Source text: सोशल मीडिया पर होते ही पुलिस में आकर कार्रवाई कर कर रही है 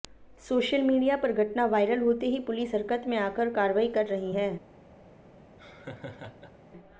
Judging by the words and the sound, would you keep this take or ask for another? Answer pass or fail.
fail